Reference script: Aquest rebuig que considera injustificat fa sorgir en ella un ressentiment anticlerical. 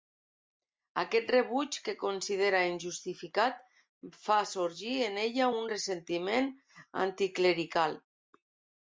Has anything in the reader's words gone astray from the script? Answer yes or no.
no